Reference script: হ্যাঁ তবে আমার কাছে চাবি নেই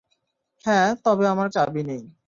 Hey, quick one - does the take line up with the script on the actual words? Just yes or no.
no